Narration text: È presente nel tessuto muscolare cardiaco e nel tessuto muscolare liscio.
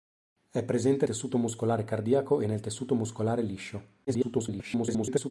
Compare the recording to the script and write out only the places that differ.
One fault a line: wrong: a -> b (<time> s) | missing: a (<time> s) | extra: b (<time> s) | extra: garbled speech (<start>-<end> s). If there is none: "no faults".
missing: nel (1.1 s)
extra: garbled speech (4.1-5.3 s)